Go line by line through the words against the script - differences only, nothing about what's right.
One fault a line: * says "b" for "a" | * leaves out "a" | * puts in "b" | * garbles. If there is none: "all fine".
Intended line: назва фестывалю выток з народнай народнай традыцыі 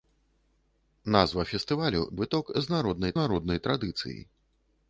all fine